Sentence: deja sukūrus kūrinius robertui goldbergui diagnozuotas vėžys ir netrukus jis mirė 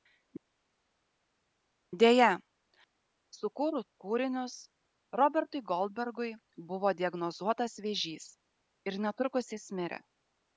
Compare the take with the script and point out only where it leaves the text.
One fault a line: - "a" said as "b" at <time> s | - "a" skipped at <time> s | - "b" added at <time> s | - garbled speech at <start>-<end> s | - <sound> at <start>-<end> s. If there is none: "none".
- "buvo" added at 6.7 s